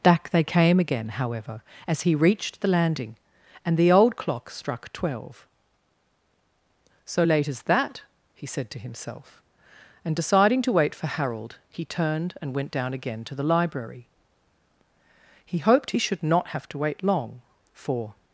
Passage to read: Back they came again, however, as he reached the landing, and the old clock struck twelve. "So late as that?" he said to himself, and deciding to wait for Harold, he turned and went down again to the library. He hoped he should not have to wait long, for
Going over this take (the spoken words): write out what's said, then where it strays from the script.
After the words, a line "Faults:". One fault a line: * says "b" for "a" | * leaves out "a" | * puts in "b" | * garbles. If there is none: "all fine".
Back they came again, however, as he reached the landing, and the old clock struck twelve. "So late as that?" he said to himself, and deciding to wait for Harold, he turned and went down again to the library. He hoped he should not have to wait long, for
Faults:
all fine